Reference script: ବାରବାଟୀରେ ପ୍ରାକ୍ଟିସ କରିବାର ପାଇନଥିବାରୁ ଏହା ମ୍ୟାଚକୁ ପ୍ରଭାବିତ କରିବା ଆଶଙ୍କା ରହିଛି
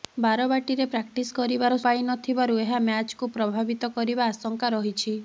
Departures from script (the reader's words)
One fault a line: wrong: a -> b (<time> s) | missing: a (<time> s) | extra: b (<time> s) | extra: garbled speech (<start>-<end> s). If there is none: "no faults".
no faults